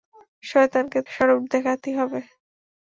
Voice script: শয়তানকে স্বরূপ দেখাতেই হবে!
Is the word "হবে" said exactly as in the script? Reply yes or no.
yes